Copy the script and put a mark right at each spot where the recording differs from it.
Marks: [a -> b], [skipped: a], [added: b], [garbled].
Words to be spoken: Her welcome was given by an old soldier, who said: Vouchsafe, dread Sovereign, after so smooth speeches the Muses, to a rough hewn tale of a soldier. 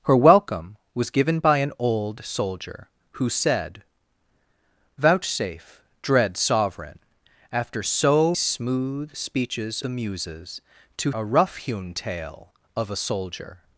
Her welcome was given by an old soldier, who said: Vouchsafe, dread Sovereign, after so smooth speeches the Muses, to a rough hewn tale of a soldier.